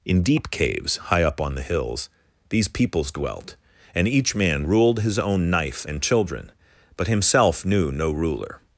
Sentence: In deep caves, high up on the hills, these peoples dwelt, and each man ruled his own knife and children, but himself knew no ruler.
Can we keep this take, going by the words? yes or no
yes